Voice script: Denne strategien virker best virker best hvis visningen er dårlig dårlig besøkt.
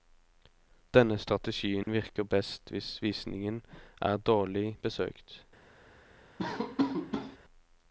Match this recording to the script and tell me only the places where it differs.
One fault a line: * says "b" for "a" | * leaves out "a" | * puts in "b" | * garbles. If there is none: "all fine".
* leaves out "virker best"
* leaves out "dårlig"